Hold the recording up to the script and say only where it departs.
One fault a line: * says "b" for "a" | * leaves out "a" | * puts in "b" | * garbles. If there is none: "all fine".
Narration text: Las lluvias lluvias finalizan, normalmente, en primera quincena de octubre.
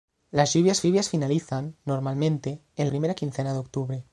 all fine